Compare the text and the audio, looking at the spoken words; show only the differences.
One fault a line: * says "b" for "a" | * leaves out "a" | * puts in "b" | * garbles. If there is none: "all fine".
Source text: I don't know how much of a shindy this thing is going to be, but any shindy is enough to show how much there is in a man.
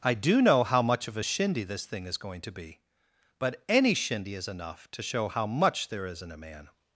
* says "do" for "don't"